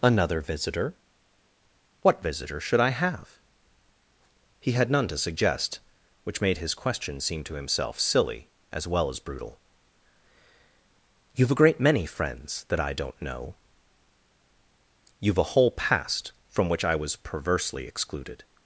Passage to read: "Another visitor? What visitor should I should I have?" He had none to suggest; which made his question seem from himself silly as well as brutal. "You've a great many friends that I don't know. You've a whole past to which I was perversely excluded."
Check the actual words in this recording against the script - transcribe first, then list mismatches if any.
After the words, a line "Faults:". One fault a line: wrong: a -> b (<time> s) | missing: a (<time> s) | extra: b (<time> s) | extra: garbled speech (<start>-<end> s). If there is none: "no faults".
"Another visitor? What visitor should I have?" He had none to suggest; which made his question seem to himself silly as well as brutal. "You've a great many friends that I don't know. You've a whole past from which I was perversely excluded."
Faults:
missing: should I (2.9 s)
wrong: from -> to (7.4 s)
wrong: to -> from (16.5 s)